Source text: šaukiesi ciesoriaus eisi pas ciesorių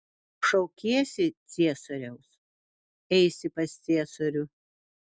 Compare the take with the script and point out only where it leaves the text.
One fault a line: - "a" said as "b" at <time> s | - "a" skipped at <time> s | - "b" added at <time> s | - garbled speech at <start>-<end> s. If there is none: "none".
none